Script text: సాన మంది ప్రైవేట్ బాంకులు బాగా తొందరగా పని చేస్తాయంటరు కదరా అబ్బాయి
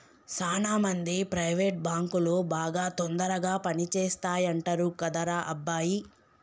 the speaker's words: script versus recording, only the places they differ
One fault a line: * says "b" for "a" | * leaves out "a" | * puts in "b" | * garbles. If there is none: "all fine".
all fine